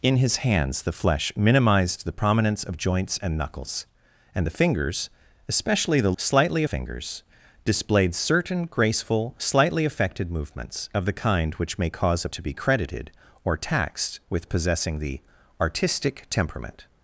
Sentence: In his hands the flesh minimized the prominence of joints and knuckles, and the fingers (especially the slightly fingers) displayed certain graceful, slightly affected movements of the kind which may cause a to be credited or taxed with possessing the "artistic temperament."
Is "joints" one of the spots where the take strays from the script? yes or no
no